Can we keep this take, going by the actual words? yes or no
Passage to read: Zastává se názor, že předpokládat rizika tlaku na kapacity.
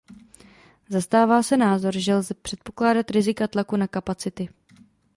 no